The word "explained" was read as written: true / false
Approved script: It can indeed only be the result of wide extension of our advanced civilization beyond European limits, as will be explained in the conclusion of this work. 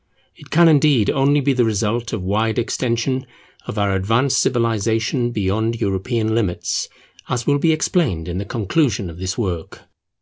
true